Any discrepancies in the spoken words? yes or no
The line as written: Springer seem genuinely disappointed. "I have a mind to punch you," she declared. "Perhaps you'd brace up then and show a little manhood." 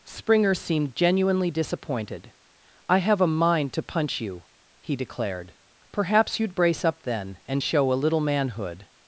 yes